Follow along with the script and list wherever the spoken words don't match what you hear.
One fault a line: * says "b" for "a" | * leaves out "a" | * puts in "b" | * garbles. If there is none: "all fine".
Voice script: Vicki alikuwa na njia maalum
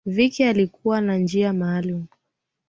all fine